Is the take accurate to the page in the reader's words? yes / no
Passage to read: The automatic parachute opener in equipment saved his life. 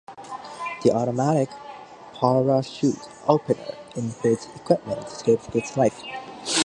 no